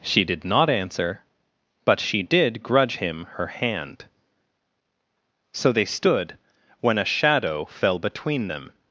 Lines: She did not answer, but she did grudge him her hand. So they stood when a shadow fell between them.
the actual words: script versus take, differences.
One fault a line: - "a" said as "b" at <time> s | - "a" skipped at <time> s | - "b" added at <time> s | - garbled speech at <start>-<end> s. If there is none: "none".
none